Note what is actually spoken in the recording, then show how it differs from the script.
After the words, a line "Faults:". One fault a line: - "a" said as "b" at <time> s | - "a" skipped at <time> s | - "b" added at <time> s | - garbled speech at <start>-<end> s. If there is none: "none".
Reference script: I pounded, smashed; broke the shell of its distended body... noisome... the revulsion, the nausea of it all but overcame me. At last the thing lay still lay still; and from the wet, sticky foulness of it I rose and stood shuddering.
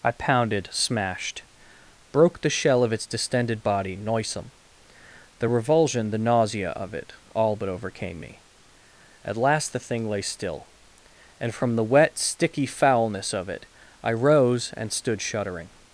I pounded, smashed; broke the shell of its distended body... noisome... the revulsion, the nausea of it all but overcame me. At last the thing lay still; and from the wet, sticky foulness of it I rose and stood shuddering.
Faults:
- "lay still" skipped at 10.7 s